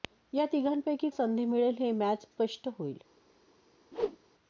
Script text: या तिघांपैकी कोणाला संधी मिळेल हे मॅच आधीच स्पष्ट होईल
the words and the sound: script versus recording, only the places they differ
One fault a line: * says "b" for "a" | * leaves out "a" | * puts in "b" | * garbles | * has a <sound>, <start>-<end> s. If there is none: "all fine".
* leaves out "कोणाला"
* leaves out "आधीच"
* has a whoosh, 3.9-4.2 s